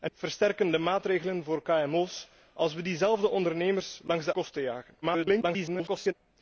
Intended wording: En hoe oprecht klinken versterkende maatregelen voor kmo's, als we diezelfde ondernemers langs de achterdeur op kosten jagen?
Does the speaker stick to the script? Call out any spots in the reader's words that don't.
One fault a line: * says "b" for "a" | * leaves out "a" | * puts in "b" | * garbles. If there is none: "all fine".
* leaves out "hoe oprecht klinken"
* leaves out "achterdeur op"
* garbles